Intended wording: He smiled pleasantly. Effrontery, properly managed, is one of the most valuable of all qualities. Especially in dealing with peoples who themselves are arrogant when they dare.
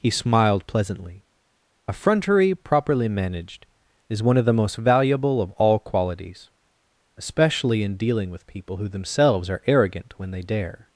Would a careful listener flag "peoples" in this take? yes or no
yes